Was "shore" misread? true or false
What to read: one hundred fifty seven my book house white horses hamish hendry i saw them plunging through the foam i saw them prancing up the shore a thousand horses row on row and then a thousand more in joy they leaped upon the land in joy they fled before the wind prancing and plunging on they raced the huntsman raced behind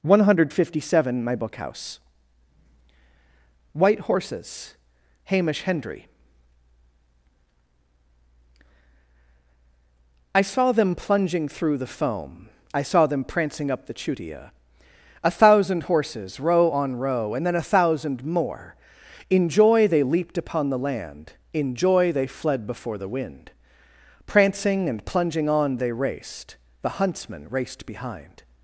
true